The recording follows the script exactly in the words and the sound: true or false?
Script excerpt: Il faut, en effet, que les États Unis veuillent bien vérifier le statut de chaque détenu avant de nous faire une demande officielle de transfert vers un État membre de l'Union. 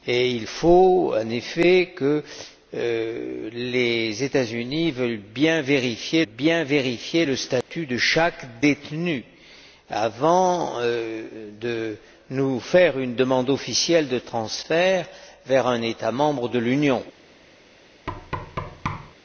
false